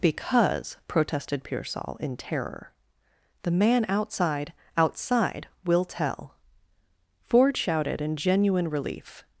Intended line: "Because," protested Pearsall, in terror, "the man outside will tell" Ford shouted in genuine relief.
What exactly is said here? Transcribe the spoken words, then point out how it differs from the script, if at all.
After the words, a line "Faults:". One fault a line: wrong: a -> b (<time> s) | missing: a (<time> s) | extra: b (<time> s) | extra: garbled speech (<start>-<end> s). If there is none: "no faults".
"Because," protested Pearsall, in terror, "the man outside outside will tell" Ford shouted in genuine relief.
Faults:
extra: outside (4.8 s)